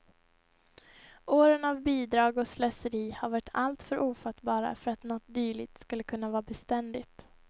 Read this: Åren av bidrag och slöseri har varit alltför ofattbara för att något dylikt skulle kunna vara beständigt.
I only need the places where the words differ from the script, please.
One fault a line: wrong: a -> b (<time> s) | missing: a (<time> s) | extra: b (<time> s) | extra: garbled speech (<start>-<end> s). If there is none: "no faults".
no faults